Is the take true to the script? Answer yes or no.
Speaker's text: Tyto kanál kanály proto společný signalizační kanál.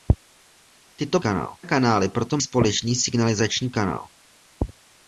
yes